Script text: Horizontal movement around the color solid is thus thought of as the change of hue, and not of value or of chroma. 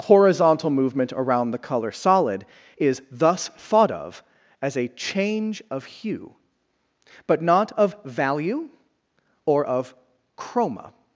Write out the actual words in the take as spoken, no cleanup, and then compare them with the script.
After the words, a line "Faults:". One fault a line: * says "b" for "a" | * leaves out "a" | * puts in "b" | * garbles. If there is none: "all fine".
Horizontal movement around the color solid is thus thought of as a change of hue, but not of value or of chroma.
Faults:
* says "a" for "the"
* says "but" for "and"